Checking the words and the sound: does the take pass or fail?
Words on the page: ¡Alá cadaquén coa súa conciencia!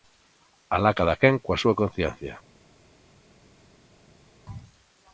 pass